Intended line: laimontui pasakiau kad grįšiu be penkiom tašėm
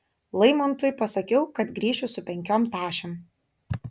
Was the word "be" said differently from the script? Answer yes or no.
yes